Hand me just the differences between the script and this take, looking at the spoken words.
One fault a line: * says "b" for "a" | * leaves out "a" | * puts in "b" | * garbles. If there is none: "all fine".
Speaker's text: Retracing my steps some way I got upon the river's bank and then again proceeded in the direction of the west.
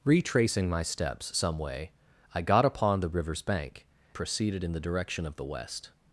* leaves out "and then again"